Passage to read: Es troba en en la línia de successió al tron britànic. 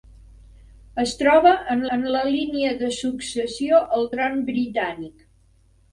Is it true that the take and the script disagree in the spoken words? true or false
false